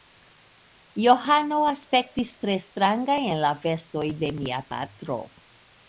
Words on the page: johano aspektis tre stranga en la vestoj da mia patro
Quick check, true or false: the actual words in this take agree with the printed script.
false